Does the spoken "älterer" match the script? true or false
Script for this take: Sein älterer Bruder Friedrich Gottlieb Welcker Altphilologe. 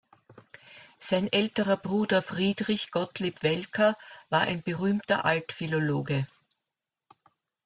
true